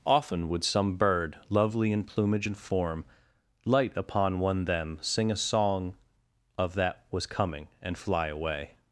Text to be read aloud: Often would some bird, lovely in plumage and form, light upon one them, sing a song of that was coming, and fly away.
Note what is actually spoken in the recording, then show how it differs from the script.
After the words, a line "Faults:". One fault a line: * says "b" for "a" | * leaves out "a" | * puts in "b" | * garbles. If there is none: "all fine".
Often would some bird, lovely in plumage and form, light upon one them, sing a song of that was coming, and fly away.
Faults:
all fine